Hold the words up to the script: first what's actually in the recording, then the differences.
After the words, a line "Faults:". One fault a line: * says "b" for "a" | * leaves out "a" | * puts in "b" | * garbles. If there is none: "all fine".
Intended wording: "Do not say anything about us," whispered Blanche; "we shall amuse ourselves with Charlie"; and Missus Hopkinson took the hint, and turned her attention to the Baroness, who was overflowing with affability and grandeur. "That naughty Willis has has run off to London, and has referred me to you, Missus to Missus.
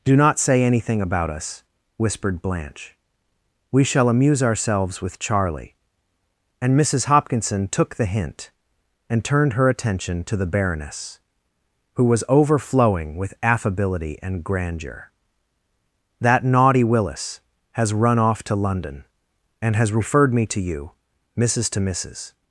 "Do not say anything about us," whispered Blanche; "we shall amuse ourselves with Charlie"; and Missus Hopkinson took the hint, and turned her attention to the Baroness, who was overflowing with affability and grandeur. "That naughty Willis has run off to London, and has referred me to you, Missus to Missus.
Faults:
* leaves out "has"